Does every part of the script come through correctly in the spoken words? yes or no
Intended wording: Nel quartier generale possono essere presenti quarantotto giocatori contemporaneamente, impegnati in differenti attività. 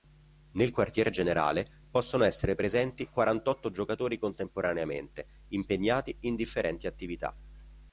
yes